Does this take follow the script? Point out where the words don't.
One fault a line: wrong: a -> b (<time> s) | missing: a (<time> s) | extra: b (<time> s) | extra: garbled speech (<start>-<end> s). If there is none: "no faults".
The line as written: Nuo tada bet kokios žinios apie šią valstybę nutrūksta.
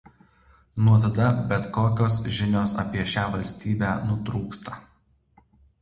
no faults